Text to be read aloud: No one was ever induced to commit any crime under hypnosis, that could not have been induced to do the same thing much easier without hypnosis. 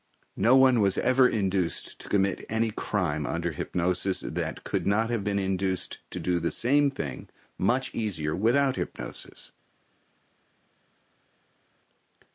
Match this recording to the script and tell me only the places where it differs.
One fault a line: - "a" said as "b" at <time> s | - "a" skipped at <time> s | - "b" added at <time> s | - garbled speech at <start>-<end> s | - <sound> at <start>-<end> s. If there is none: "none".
none